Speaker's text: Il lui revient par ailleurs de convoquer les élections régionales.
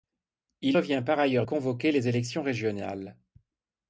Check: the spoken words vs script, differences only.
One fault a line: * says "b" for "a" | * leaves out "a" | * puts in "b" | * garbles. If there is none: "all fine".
* leaves out "lui"
* leaves out "de"